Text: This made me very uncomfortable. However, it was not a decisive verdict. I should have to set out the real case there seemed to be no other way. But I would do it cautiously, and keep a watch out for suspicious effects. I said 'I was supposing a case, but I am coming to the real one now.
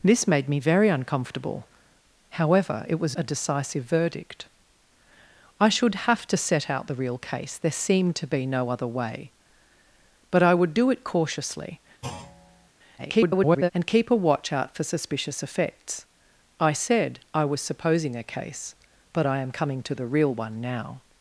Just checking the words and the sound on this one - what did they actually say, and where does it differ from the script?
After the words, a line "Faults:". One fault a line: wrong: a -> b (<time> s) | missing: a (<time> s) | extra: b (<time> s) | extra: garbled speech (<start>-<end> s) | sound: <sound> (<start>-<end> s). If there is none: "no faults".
This made me very uncomfortable. However, it was a decisive verdict. I should have to set out the real case there seemed to be no other way. But I would do it cautiously, [garbled] and keep a watch out for suspicious effects. I said 'I was supposing a case, but I am coming to the real one now.
Faults:
missing: not (3.2 s)
sound: thud (12.0-12.7 s)
extra: garbled speech (13.0-13.7 s)